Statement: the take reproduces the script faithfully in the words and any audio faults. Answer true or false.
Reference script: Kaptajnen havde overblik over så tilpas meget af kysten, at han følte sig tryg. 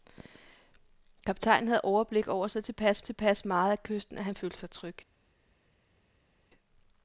false